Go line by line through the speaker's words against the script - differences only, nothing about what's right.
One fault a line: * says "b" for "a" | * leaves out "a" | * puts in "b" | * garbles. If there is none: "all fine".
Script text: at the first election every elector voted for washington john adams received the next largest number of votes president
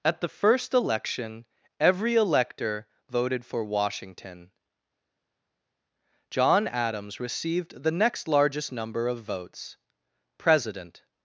all fine